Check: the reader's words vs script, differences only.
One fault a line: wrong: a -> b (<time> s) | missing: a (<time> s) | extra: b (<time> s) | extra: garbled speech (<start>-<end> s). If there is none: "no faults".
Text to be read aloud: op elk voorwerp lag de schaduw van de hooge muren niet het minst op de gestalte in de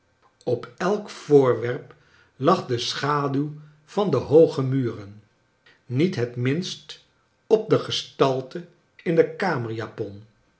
no faults